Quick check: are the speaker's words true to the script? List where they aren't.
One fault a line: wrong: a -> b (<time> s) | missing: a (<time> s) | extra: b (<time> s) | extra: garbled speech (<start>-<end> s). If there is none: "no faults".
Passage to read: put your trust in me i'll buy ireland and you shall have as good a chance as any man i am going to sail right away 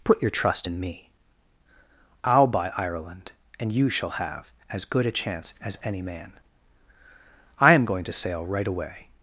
no faults